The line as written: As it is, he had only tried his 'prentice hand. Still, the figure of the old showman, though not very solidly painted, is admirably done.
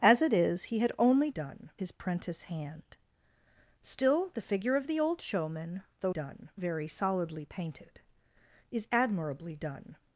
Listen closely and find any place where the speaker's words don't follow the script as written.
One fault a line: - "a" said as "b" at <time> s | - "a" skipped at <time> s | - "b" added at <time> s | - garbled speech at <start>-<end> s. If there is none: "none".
- "tried" said as "done" at 1.3 s
- "not" said as "done" at 6.1 s